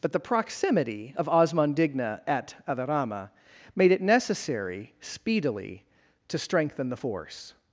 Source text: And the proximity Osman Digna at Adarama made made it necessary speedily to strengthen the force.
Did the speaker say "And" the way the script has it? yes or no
no